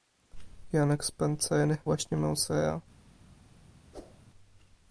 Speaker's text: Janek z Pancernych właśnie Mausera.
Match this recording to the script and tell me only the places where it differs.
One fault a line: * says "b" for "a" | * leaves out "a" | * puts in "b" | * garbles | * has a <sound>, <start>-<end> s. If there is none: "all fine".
* has a whoosh, 3.9-4.3 s